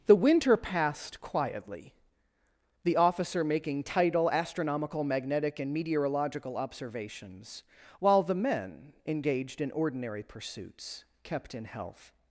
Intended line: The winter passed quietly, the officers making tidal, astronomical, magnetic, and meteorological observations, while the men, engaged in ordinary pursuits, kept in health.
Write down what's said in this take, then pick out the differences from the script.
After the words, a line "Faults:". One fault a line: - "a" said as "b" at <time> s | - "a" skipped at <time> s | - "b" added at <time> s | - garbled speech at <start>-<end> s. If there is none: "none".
The winter passed quietly, the officer making tidal, astronomical, magnetic, and meteorological observations, while the men, engaged in ordinary pursuits, kept in health.
Faults:
- "officers" said as "officer" at 3.0 s